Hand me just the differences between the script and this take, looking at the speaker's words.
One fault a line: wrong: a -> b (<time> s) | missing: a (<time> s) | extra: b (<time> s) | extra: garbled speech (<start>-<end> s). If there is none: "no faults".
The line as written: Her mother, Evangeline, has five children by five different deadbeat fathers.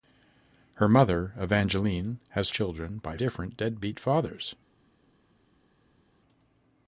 missing: five (2.5 s)
missing: five (3.2 s)